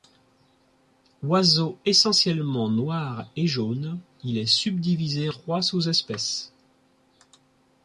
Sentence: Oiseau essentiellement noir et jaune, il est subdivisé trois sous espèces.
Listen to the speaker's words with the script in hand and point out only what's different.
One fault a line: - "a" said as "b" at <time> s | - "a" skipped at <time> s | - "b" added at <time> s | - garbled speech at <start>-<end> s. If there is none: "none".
none